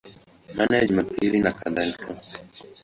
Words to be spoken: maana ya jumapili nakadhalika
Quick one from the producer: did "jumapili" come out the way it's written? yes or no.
yes